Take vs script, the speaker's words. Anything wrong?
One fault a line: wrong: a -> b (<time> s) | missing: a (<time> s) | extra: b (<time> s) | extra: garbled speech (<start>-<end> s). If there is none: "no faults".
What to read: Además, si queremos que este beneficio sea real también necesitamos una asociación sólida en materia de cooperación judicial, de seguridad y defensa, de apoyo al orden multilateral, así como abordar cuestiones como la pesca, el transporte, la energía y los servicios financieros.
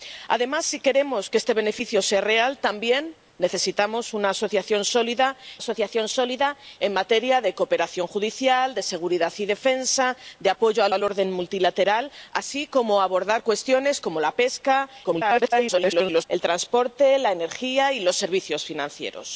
extra: asociación sólida (5.6 s)
extra: al (10.9 s)
extra: garbled speech (15.0-16.2 s)